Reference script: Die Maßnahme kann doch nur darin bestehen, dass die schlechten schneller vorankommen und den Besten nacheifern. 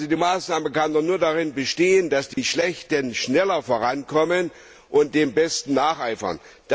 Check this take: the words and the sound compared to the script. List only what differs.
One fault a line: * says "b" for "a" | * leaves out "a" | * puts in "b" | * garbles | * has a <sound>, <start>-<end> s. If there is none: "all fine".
* has a dropout, 2.3-2.4 s